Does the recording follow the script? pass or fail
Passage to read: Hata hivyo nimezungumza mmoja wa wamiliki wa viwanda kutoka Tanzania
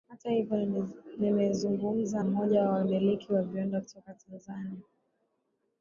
pass